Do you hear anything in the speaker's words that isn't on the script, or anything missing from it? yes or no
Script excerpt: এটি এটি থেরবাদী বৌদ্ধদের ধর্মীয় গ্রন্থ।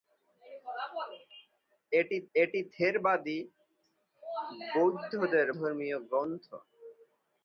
no